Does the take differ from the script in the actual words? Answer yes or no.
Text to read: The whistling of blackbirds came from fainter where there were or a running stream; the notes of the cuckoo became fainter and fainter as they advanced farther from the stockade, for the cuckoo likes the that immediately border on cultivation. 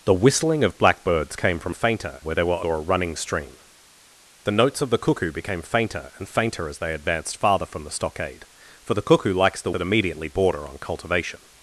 no